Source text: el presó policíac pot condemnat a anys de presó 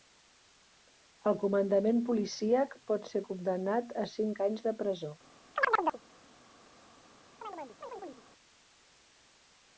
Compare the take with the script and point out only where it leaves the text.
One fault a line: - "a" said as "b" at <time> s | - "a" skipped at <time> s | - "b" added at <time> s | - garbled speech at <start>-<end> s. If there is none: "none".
- "presó" said as "comandament" at 1.4 s
- "ser" added at 3.1 s
- "cinc" added at 4.2 s